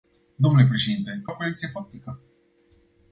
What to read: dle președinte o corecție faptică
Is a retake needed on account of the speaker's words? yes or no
no